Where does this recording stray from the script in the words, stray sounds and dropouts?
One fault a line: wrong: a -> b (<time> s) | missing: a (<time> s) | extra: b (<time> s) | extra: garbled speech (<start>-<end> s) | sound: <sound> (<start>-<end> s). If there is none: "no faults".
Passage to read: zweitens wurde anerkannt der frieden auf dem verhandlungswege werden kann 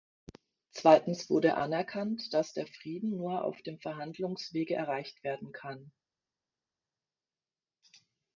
extra: dass (2.3 s)
extra: nur (3.2 s)
extra: erreicht (4.7 s)